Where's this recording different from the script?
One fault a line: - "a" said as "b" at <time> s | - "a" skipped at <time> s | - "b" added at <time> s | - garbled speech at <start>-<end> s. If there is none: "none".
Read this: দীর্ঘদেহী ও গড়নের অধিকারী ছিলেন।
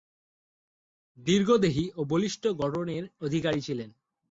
- "বলিষ্ঠ" added at 2.0 s